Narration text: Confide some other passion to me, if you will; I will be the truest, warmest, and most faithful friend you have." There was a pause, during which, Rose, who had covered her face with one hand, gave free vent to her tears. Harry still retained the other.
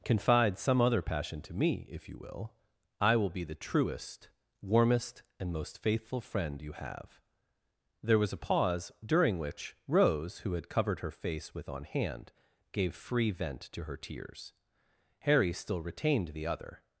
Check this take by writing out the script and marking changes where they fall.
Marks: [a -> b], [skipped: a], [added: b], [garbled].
Confide some other passion to me, if you will; I will be the truest, warmest, and most faithful friend you have." There was a pause, during which, Rose, who had covered her face with [one -> on] hand, gave free vent to her tears. Harry still retained the other.